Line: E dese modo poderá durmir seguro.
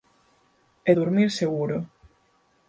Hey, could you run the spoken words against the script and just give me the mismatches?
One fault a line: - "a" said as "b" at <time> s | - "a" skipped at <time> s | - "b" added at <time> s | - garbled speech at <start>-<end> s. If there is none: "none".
- "dese modo poderá" skipped at 0.9 s